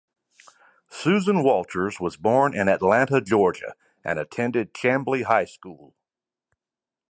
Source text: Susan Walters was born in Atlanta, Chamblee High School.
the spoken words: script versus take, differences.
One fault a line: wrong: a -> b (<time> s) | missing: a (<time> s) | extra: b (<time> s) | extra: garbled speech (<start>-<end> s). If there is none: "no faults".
extra: Georgia and attended (3.2 s)